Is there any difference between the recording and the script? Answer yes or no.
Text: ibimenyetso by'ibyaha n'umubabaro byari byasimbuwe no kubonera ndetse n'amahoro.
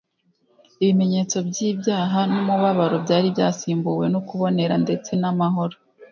no